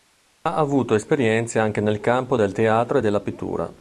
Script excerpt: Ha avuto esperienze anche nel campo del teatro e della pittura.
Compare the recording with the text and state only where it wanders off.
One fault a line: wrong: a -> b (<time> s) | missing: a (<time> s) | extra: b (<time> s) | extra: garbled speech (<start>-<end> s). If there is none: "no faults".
no faults